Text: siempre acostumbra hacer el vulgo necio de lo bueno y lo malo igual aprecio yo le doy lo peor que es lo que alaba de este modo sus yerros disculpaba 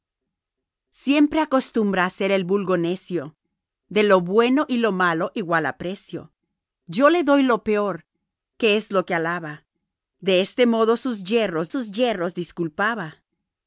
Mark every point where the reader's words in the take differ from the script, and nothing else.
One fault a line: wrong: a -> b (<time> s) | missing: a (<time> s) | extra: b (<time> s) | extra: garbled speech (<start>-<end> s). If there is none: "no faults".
extra: sus yerros (11.7 s)